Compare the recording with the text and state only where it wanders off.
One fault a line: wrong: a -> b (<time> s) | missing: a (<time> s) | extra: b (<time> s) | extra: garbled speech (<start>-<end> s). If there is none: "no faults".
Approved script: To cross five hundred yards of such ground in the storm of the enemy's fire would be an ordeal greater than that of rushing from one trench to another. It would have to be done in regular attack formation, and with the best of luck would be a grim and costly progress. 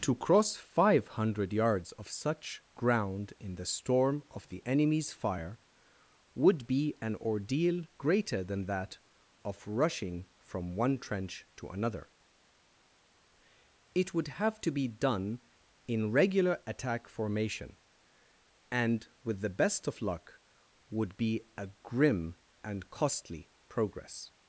no faults